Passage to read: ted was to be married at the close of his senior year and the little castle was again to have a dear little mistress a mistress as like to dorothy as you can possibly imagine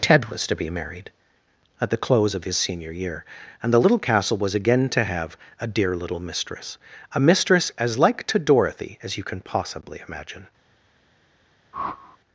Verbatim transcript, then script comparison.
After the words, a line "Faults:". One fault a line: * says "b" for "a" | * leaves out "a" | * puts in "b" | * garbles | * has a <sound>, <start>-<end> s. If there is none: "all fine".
ted was to be married at the close of his senior year and the little castle was again to have a dear little mistress a mistress as like to dorothy as you can possibly imagine
Faults:
* has a whoosh, 11.7-12.2 s